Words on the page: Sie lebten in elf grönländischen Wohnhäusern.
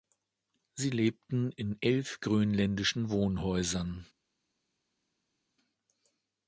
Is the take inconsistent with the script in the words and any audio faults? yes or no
no